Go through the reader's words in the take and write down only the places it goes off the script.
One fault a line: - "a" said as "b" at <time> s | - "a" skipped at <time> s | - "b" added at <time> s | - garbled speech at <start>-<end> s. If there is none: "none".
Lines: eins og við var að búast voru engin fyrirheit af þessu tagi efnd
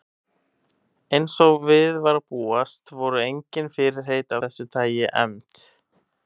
- "af" skipped at 4.4 s